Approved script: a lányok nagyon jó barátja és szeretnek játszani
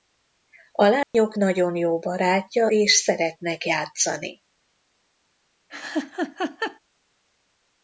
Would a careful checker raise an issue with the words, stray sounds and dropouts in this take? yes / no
yes